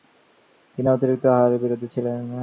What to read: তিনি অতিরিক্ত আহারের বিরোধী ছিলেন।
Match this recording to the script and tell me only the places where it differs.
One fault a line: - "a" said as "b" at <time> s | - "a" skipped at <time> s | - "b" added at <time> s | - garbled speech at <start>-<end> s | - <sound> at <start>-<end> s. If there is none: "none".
none